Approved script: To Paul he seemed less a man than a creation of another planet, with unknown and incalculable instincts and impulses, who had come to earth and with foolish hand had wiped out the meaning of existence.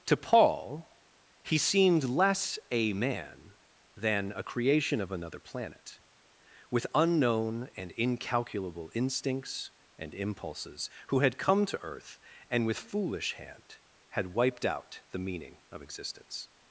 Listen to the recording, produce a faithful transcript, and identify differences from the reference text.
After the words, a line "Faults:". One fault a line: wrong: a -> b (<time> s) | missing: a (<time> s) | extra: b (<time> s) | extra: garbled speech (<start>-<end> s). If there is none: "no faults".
To Paul he seemed less a man than a creation of another planet, with unknown and incalculable instincts and impulses, who had come to earth and with foolish hand had wiped out the meaning of existence.
Faults:
no faults